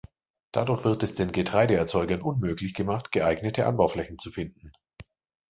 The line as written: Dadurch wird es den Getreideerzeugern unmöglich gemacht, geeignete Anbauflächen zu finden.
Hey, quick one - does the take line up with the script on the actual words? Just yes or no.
yes